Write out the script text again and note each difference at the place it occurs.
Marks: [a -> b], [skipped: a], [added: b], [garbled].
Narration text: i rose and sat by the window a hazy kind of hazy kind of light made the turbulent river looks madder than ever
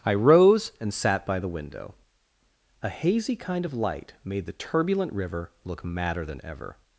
i rose and sat by the window a hazy kind of [skipped: hazy kind of] light made the turbulent river [looks -> look] madder than ever